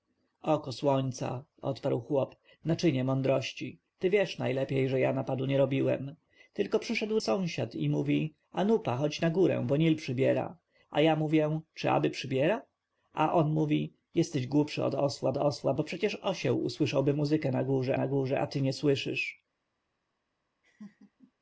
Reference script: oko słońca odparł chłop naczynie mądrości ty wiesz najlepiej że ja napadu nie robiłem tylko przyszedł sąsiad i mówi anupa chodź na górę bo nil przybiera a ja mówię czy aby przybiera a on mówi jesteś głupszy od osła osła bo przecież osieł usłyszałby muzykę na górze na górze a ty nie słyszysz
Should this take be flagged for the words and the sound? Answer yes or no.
yes